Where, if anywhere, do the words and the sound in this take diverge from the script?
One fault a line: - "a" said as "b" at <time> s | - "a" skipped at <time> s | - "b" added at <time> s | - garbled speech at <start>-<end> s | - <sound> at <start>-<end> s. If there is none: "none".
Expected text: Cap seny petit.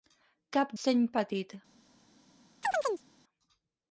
- chirp at 2.6-3.1 s